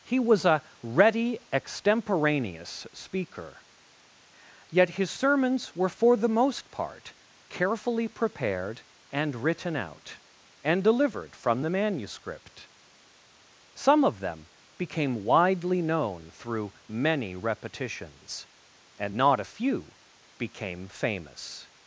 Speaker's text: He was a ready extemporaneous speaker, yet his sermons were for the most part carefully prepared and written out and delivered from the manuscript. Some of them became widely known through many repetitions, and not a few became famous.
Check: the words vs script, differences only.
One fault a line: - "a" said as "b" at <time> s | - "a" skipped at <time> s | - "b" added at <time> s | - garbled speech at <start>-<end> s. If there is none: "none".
none